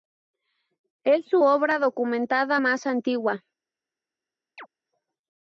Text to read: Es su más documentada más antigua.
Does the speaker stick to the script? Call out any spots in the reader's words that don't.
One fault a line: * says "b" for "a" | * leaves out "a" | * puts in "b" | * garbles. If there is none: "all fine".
* says "obra" for "más"